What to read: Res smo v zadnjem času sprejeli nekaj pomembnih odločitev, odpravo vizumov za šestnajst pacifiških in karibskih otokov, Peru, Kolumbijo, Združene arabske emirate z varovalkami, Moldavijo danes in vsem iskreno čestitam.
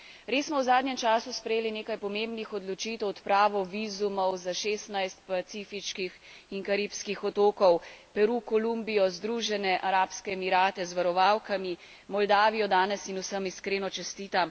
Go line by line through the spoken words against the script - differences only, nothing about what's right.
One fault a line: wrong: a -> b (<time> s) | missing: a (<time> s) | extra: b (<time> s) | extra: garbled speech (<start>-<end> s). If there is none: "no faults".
no faults